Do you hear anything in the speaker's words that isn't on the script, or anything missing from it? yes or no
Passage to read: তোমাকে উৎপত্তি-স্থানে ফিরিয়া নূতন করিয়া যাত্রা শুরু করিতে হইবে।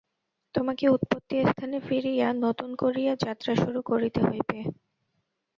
no